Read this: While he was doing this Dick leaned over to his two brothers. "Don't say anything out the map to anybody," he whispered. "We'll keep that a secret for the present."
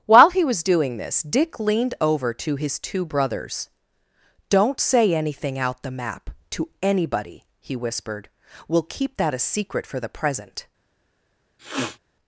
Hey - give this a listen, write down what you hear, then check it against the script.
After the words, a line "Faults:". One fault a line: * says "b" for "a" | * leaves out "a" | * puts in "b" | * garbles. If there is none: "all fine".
While he was doing this Dick leaned over to his two brothers. "Don't say anything out the map to anybody," he whispered. "We'll keep that a secret for the present."
Faults:
all fine